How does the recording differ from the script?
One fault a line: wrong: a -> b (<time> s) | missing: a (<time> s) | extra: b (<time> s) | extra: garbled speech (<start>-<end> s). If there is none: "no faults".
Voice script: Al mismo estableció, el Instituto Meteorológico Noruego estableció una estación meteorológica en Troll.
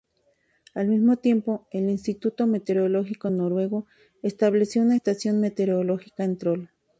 wrong: estableció -> tiempo (1.2 s)